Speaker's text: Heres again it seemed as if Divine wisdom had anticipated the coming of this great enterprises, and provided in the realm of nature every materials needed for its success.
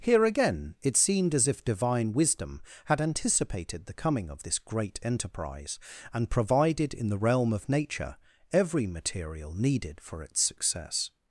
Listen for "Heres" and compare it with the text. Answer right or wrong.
wrong